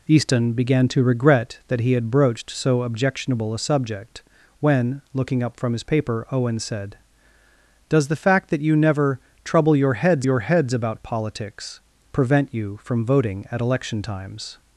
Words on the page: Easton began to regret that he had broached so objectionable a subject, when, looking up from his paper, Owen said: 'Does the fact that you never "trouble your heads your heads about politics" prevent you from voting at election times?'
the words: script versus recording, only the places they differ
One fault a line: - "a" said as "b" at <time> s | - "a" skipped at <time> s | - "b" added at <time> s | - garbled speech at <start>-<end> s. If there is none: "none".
none